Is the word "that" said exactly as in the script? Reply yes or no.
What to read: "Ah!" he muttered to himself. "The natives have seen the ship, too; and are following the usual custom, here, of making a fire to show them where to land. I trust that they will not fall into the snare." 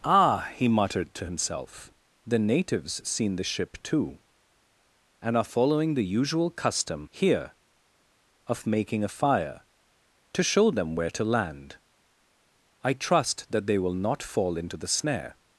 yes